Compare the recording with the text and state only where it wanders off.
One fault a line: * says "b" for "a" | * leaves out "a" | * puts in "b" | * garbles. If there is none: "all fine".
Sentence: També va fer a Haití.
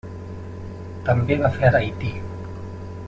all fine